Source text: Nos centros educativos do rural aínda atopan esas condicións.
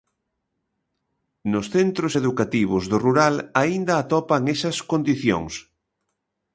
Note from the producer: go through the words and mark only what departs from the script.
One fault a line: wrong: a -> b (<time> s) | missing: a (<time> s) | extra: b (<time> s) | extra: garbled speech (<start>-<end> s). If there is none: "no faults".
no faults